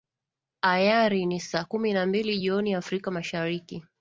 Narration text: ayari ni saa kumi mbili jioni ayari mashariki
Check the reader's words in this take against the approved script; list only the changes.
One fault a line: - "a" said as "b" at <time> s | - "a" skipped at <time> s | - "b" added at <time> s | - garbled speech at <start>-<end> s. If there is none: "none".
- "na" added at 1.9 s
- "ayari" said as "afrika" at 2.7 s